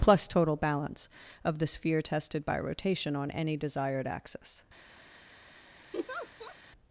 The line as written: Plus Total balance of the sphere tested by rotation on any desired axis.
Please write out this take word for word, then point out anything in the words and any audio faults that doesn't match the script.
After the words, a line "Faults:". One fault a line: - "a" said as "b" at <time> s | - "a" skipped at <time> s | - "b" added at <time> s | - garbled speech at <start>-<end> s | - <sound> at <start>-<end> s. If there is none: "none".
Plus Total balance of the sphere tested by rotation on any desired axis.
Faults:
- laugh at 5.9-6.6 s